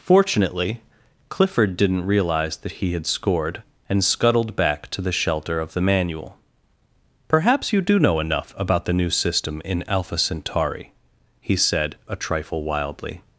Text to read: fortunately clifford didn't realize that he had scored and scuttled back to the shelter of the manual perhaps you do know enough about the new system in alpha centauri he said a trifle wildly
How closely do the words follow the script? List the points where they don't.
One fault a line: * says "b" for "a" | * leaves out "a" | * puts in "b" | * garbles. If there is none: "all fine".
all fine